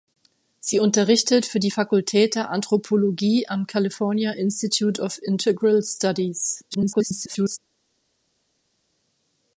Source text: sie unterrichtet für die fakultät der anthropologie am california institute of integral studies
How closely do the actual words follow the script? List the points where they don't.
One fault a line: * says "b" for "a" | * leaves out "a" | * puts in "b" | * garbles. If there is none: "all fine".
* garbles